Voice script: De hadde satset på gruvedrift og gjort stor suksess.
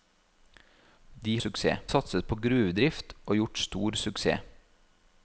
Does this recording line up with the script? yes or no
no